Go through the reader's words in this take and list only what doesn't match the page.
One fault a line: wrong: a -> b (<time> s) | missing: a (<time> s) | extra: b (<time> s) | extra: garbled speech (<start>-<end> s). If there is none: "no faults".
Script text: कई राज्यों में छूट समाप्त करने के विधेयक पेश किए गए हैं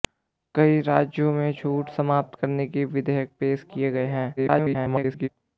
extra: garbled speech (4.4-5.3 s)